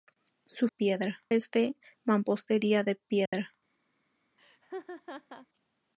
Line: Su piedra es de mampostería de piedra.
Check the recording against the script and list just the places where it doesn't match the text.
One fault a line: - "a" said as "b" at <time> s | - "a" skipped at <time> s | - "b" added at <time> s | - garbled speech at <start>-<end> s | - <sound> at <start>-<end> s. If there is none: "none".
- dropout at 3.3-3.3 s
- laugh at 4.4-5.5 s